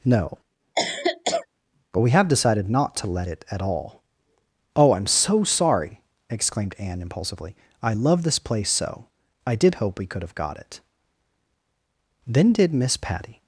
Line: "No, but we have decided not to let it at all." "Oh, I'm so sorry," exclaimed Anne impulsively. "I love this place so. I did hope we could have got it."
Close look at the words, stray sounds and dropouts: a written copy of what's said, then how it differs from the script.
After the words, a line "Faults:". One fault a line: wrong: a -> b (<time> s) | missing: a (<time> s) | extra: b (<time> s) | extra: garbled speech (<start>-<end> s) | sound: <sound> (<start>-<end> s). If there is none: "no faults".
"No, but we have decided not to let it at all." "Oh, I'm so sorry," exclaimed Anne impulsively. "I love this place so. I did hope we could have got it." Then did Miss Patty
Faults:
sound: cough (0.8-1.5 s)
extra: Then did Miss Patty (12.2 s)